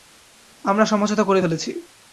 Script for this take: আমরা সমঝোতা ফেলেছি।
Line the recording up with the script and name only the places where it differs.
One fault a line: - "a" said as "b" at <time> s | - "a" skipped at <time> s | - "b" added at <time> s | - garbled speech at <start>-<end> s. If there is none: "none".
- "করে" added at 1.2 s